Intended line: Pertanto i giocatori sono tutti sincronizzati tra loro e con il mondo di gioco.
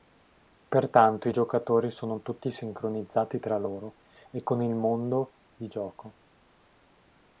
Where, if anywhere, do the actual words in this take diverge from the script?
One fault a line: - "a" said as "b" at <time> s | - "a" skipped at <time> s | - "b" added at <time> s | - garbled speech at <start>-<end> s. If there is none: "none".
none